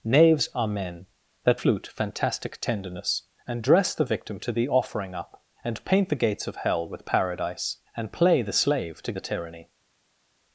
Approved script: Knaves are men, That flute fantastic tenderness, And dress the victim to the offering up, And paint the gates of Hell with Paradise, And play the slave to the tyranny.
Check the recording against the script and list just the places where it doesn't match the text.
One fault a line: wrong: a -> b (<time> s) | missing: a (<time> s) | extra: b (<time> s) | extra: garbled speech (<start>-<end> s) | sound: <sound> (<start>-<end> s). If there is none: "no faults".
no faults